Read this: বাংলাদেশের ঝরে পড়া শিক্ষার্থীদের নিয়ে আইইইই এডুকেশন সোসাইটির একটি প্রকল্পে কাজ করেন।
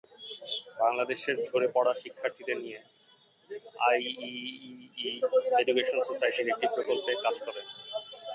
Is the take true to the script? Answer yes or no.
yes